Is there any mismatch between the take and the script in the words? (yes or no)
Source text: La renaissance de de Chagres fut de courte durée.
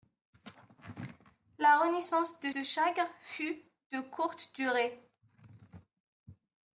no